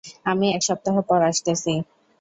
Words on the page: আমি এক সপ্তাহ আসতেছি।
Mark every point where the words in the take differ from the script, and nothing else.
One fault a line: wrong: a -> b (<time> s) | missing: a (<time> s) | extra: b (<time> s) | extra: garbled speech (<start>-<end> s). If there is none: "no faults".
extra: পর (1.1 s)